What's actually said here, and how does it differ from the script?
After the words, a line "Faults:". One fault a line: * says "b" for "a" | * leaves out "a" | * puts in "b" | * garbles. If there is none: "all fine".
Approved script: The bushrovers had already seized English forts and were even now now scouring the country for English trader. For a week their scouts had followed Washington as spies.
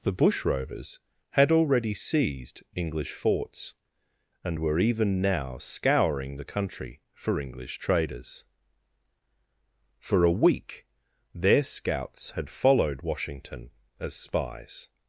The bushrovers had already seized English forts and were even now scouring the country for English traders. For a week their scouts had followed Washington as spies.
Faults:
* leaves out "now"
* says "traders" for "trader"